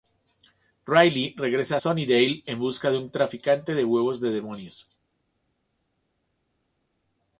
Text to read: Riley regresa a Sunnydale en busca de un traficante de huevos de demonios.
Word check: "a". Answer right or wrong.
right